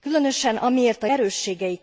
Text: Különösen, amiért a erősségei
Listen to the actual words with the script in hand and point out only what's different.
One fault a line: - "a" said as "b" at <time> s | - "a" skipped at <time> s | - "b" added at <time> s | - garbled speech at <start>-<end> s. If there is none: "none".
none